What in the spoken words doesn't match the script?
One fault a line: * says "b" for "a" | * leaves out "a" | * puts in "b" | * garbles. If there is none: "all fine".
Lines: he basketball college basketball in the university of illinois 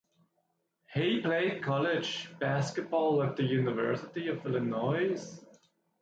* says "played" for "basketball"
* says "at" for "in"